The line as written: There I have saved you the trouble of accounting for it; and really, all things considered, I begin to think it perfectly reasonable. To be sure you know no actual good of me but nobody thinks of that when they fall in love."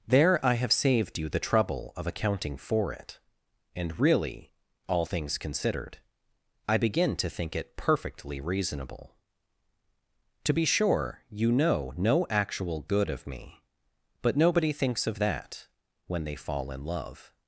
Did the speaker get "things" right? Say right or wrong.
right